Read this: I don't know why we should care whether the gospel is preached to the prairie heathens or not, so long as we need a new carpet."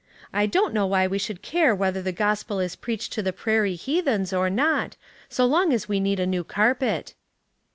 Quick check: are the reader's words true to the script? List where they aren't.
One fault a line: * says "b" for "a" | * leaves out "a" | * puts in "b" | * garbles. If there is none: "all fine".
all fine